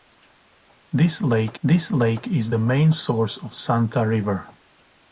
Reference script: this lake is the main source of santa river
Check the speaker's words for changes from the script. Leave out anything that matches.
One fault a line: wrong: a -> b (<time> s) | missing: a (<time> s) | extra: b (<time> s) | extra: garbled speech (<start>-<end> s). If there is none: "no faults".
extra: this lake (1.6 s)